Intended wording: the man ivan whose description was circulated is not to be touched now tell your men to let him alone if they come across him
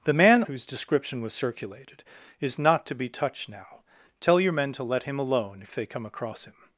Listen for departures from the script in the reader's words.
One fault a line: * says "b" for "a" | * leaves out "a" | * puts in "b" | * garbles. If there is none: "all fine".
* leaves out "ivan"